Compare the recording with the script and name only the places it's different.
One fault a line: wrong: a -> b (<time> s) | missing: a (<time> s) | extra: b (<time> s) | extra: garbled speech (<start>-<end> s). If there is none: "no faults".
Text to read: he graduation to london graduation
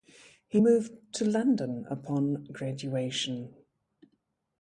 wrong: graduation -> moved (0.6 s)
extra: upon (1.9 s)